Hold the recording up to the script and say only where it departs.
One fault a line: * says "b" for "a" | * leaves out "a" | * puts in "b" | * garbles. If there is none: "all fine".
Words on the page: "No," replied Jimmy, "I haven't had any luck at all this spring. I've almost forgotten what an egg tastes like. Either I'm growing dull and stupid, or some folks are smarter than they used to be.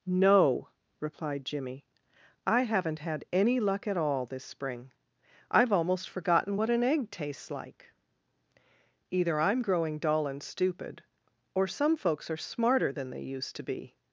all fine